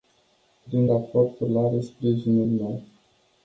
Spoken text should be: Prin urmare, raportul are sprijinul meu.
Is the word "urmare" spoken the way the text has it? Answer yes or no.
no